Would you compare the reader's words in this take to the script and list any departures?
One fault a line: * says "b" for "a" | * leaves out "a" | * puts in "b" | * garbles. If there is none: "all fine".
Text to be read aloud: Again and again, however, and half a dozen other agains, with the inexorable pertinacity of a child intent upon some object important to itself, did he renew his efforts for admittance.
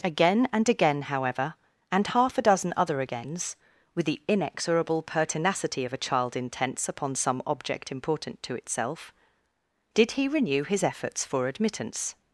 * says "intents" for "intent"